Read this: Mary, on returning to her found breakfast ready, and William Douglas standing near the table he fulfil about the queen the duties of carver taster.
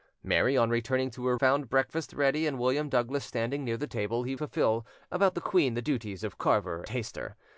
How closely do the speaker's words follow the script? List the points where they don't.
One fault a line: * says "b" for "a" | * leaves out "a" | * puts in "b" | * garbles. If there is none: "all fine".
all fine